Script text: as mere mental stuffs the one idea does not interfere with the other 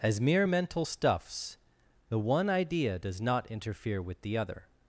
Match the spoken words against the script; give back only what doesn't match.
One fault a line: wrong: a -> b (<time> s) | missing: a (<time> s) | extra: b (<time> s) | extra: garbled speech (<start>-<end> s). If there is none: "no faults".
no faults